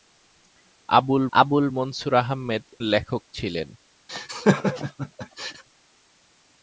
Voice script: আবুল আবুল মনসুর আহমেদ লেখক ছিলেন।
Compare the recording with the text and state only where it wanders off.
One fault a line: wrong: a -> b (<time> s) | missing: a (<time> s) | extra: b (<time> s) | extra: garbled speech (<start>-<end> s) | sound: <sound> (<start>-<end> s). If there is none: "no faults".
sound: laugh (4.1-5.6 s)